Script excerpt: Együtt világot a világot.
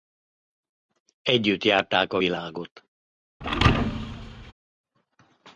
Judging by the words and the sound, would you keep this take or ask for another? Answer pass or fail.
fail